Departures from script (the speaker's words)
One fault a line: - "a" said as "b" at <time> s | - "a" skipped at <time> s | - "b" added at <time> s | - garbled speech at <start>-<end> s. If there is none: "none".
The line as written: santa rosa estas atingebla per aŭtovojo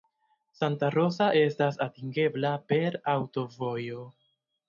none